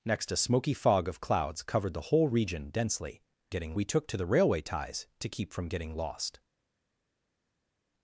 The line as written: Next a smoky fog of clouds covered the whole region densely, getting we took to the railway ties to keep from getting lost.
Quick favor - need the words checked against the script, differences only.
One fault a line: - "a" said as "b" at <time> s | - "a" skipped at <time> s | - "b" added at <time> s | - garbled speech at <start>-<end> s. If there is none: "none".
none